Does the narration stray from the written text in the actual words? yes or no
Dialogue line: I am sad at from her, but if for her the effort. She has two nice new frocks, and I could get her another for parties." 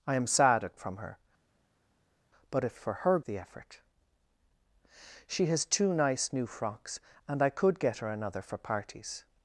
no